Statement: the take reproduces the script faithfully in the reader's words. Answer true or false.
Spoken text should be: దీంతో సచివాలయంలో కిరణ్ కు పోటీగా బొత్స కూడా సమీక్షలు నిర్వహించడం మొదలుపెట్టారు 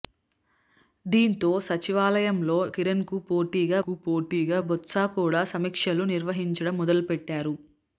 false